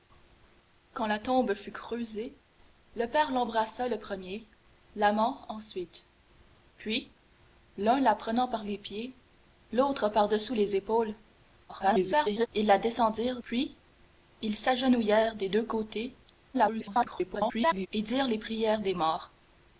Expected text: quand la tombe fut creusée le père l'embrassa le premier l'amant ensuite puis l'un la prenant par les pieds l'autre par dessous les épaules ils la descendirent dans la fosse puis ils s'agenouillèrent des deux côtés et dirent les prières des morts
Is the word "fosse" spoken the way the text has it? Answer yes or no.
no